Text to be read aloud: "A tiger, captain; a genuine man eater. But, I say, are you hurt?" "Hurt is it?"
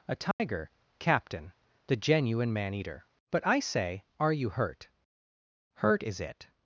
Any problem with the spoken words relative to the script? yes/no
yes